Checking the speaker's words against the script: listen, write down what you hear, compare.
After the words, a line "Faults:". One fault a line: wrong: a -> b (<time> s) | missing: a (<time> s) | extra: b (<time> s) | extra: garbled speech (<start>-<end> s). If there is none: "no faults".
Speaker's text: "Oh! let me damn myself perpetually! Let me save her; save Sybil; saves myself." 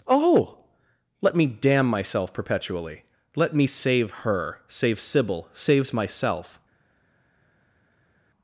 "Oh! let me damn myself perpetually! Let me save her; save Sybil; saves myself."
Faults:
no faults